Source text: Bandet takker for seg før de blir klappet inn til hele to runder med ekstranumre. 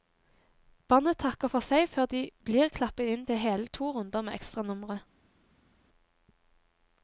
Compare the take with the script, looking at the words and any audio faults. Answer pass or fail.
pass